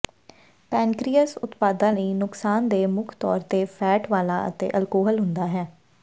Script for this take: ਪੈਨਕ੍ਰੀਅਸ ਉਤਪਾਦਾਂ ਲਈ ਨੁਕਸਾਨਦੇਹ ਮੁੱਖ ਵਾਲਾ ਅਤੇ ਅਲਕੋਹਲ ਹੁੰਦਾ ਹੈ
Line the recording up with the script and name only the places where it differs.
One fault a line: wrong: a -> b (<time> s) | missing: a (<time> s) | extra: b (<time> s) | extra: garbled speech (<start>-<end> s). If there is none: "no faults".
extra: ਤੌਰ ਤੇ ਫ਼ੈਟ (3.2 s)